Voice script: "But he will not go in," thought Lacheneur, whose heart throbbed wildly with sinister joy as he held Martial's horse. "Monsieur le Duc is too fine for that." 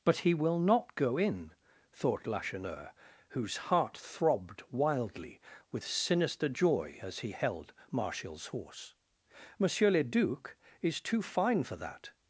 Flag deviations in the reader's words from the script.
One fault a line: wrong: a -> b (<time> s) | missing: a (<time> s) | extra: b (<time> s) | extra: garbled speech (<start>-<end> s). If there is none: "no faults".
no faults